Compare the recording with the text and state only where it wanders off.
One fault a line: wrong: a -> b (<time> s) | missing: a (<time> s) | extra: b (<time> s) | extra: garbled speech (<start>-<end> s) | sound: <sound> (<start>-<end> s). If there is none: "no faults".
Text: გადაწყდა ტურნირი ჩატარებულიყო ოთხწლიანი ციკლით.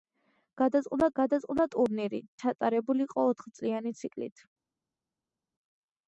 extra: გადაწყდა (1.2 s)